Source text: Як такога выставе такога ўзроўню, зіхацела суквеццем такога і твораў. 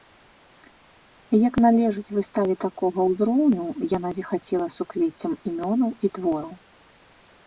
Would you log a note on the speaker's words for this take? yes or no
yes